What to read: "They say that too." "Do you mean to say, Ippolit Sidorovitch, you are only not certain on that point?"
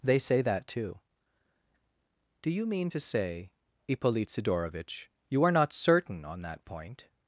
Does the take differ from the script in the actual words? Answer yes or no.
yes